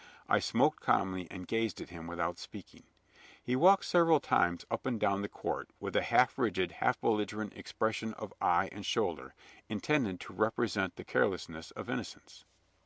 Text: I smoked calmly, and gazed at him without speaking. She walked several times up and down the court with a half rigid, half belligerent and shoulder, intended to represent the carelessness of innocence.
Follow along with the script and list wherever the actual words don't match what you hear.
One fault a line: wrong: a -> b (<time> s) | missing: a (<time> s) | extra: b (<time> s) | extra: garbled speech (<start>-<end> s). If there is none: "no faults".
wrong: She -> He (3.4 s)
extra: expression of eye (7.6 s)